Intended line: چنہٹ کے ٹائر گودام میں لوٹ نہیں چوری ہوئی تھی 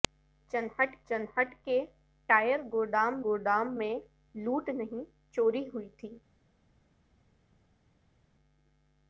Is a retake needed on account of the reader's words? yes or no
yes